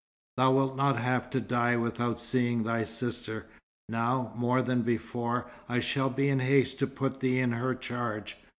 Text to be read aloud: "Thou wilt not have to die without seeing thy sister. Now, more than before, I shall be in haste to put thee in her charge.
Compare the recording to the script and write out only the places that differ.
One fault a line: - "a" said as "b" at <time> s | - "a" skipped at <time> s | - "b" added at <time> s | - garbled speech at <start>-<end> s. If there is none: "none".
none